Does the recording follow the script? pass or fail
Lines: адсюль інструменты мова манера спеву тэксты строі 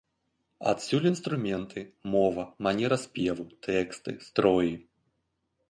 pass